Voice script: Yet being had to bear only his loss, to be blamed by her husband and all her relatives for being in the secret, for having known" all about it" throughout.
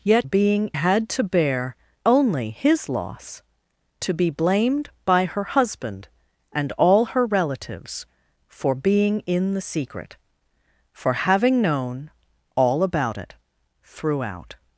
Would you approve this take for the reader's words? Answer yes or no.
yes